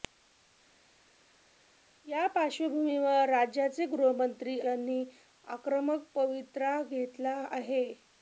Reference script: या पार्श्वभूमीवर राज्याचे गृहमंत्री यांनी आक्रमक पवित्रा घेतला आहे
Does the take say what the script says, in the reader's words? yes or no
yes